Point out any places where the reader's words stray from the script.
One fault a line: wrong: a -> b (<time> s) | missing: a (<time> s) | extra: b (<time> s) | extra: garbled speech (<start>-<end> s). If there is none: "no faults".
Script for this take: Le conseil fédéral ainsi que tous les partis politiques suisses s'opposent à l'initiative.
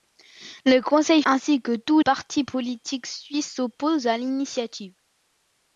missing: fédéral (1.2 s)
missing: les (2.0 s)